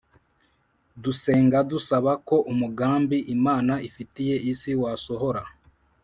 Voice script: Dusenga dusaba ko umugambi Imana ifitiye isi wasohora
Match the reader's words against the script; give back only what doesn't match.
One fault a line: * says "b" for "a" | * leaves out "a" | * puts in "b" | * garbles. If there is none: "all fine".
all fine